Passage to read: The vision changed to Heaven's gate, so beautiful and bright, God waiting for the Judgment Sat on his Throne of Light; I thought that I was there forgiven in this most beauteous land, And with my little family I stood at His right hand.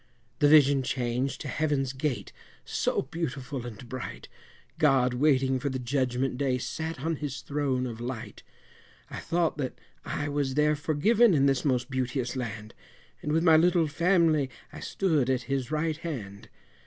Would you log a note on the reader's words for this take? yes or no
yes